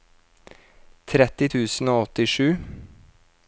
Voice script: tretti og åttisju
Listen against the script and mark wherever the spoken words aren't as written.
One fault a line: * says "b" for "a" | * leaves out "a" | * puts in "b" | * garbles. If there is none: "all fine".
* puts in "tusen"